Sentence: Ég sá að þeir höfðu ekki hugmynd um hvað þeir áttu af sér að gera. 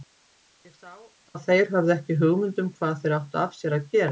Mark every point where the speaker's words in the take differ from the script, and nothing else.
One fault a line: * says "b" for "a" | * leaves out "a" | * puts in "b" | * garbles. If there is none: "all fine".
all fine